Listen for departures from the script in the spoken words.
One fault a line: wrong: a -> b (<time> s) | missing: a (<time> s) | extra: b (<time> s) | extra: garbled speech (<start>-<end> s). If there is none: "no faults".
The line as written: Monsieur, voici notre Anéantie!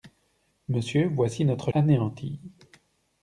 no faults